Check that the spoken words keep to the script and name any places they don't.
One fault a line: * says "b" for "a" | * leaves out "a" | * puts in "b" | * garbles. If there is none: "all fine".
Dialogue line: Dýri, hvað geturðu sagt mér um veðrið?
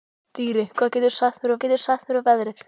* puts in "geturðu sagt mér"